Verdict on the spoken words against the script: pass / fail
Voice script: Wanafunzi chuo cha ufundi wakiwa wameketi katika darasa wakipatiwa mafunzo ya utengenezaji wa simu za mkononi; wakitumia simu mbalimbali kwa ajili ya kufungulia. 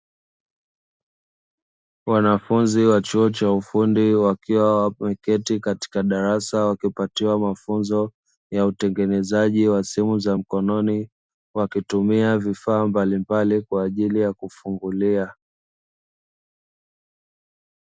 fail